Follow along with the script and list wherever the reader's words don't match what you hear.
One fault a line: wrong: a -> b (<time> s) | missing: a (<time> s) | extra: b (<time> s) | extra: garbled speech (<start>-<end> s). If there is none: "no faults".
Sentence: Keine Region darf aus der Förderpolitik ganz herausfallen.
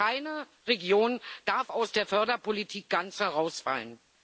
no faults